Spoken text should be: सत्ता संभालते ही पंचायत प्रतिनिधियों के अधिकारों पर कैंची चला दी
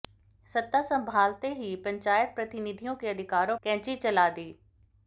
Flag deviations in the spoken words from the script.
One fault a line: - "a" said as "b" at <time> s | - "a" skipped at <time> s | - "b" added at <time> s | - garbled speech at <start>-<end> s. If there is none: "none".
- "पर" skipped at 3.6 s